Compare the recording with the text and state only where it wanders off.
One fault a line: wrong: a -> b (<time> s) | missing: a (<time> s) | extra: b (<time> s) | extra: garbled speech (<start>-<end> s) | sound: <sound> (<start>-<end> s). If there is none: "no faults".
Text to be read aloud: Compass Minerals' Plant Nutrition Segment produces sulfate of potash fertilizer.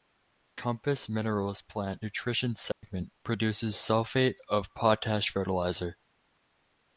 sound: dropout (2.7-2.8 s)